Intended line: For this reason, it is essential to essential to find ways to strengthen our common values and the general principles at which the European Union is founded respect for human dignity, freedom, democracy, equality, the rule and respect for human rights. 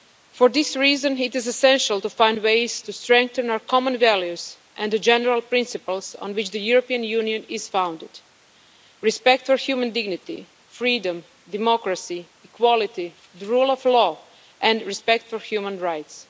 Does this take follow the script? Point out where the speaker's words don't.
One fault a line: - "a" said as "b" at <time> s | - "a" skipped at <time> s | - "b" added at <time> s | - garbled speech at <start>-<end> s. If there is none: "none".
- "essential to" skipped at 2.1 s
- "at" said as "on" at 6.2 s
- "of law" added at 13.7 s